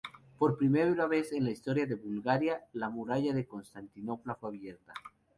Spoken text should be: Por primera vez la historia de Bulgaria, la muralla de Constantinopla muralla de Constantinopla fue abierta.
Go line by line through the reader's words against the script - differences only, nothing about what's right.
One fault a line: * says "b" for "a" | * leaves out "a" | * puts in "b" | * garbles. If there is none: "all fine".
* puts in "en"
* leaves out "muralla de Constantinopla"